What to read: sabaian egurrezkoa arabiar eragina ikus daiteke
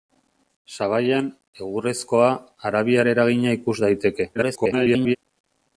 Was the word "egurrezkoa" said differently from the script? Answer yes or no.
no